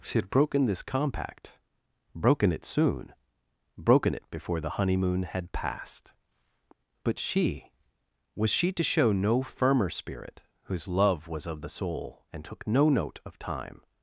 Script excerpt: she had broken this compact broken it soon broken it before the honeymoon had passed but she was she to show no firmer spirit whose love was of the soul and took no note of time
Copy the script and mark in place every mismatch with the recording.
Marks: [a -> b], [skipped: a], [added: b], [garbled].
she had broken this compact broken it soon broken it before the honeymoon had passed but she was she to show no firmer spirit whose love was of the soul and took no note of time